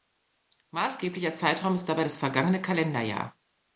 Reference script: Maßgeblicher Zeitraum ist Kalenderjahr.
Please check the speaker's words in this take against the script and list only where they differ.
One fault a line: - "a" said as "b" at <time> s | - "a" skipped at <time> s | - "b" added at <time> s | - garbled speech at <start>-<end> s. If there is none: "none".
- "dabei das vergangene" added at 1.9 s